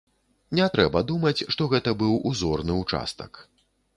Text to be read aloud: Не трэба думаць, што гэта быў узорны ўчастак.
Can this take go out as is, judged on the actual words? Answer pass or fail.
pass